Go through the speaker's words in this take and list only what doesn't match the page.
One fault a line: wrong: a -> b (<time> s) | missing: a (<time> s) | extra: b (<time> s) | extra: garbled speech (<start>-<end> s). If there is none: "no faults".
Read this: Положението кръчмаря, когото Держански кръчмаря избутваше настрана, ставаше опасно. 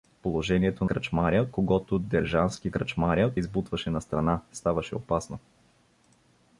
no faults